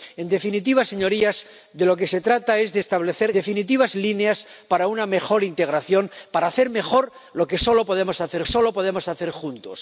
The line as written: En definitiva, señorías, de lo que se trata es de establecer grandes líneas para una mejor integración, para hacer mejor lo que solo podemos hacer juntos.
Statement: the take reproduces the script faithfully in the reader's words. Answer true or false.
false